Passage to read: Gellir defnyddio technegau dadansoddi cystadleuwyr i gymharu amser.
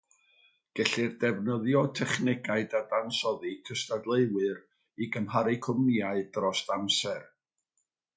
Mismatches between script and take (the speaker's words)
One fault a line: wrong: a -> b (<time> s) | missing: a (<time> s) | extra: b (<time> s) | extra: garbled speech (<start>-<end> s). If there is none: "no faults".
extra: cwmnïau dros (5.7 s)